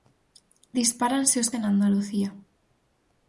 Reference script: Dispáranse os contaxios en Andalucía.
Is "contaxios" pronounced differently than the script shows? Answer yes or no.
yes